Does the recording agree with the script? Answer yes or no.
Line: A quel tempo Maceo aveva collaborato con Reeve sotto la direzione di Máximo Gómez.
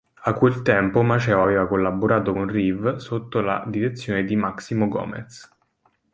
yes